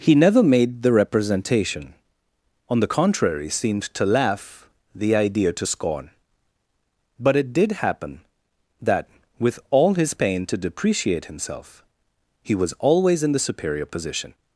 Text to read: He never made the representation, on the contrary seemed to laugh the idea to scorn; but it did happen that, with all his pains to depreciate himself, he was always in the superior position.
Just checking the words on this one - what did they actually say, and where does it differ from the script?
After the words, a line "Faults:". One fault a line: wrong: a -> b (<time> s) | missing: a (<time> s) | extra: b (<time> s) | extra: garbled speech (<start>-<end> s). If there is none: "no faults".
He never made the representation, on the contrary seemed to laugh the idea to scorn; but it did happen that, with all his pain to depreciate himself, he was always in the superior position.
Faults:
wrong: pains -> pain (10.1 s)